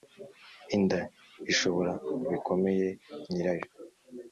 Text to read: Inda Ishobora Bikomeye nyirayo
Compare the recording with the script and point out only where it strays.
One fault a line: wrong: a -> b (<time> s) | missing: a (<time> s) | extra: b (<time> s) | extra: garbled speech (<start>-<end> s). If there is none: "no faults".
no faults